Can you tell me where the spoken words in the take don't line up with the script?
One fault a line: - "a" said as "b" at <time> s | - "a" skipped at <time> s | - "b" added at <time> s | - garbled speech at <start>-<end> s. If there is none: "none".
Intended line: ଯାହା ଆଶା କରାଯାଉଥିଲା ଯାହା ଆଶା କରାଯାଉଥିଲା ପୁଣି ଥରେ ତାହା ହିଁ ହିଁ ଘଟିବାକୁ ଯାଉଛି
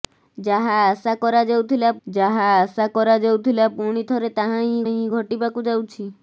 none